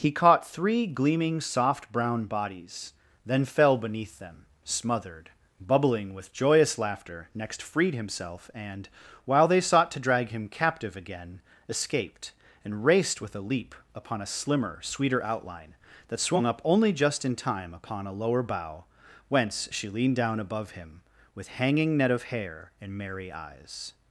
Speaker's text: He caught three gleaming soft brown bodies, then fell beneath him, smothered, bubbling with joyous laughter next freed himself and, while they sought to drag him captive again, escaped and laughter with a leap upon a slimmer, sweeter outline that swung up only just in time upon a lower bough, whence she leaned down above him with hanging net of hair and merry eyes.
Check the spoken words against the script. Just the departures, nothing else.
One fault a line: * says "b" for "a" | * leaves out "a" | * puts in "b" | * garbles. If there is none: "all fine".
* says "them" for "him"
* says "raced" for "laughter"